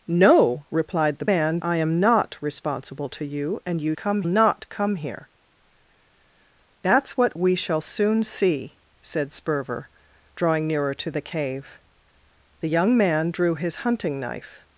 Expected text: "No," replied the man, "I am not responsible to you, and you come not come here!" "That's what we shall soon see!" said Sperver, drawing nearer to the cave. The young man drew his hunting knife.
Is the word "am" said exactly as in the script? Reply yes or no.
yes